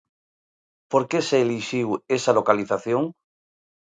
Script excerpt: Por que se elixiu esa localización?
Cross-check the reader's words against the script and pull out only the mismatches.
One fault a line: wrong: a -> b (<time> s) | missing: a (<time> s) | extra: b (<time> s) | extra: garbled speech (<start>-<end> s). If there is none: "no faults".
no faults